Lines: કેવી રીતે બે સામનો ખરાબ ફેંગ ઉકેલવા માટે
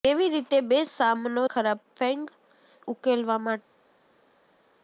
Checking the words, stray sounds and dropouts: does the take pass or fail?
pass